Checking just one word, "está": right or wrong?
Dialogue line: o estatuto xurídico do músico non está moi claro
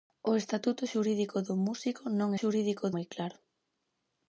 wrong